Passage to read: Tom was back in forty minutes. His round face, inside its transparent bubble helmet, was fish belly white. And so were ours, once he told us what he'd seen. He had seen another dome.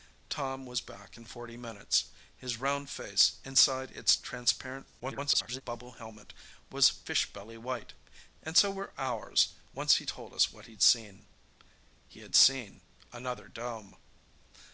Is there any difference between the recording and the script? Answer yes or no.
yes